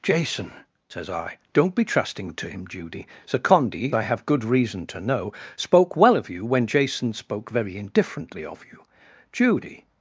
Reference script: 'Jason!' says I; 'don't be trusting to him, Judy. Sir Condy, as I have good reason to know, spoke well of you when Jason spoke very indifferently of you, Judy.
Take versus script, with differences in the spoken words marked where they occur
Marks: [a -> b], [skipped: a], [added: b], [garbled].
'Jason!' says I; 'don't be trusting to him, Judy. Sir Condy, [skipped: as] I have good reason to know, spoke well of you when Jason spoke very indifferently of you, Judy.